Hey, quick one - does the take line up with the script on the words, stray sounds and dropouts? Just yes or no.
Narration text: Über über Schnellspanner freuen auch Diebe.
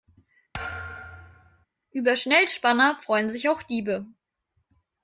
no